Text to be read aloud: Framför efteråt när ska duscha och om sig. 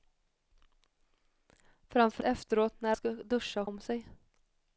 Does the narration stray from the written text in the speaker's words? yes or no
no